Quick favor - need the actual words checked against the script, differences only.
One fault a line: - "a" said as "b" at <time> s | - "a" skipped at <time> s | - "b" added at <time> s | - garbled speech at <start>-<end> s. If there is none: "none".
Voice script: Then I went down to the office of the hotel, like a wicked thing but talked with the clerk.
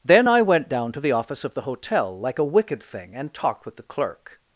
- "but" said as "and" at 3.1 s